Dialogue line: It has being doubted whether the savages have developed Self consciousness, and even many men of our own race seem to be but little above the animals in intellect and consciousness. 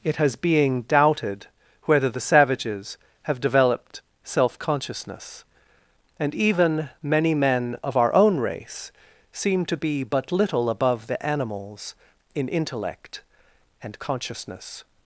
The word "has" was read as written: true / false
true